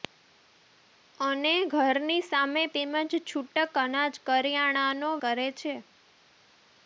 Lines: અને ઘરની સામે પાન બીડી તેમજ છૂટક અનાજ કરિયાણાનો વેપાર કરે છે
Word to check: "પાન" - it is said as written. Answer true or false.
false